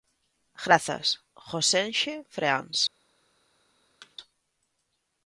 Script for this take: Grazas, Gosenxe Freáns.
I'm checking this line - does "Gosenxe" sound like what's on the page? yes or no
yes